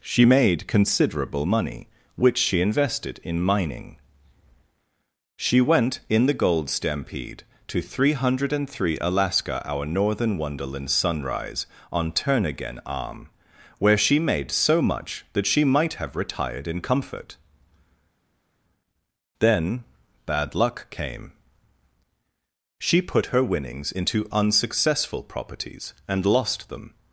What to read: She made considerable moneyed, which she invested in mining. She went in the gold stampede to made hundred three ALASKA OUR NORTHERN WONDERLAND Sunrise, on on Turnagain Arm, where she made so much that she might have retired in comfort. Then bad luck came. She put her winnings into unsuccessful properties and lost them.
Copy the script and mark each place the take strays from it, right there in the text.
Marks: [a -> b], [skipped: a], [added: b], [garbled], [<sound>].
She made considerable [moneyed, -> money] which she invested in mining. She went in the gold stampede to [made -> three] hundred three ALASKA OUR NORTHERN WONDERLAND Sunrise, on [skipped: on] Turnagain Arm, where she made so much that she might have retired in comfort. Then bad luck came. She put her winnings into unsuccessful properties and lost them.